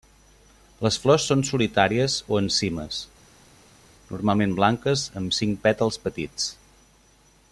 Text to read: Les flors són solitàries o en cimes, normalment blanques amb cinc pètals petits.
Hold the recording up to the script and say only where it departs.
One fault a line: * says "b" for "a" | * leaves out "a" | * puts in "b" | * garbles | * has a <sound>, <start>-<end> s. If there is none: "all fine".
all fine